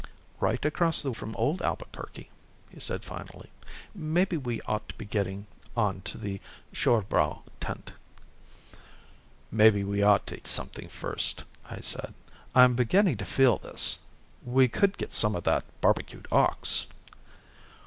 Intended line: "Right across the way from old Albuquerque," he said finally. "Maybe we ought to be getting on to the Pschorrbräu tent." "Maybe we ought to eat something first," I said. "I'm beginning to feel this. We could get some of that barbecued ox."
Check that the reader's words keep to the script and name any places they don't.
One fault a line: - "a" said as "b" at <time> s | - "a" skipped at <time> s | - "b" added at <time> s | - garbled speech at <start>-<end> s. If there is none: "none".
- "way" skipped at 1.1 s
- "eat" skipped at 10.4 s